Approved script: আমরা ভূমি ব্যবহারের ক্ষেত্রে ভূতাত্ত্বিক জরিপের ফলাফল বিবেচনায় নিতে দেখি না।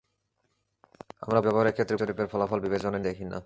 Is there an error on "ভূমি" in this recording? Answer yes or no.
yes